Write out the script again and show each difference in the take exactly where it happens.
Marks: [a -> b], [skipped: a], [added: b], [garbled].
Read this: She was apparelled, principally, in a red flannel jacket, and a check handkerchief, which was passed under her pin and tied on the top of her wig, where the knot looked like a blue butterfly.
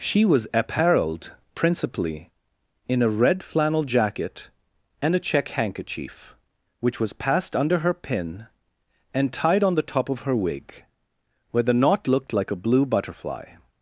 She was apparelled, principally, in a red flannel jacket, and a check handkerchief, which was passed under her pin and tied on the top of her wig, where the knot looked like a blue butterfly.